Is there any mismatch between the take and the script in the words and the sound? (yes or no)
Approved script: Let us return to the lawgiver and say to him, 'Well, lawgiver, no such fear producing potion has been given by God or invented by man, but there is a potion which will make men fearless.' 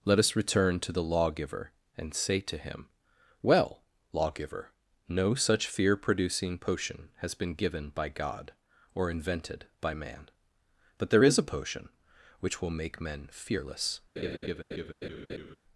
yes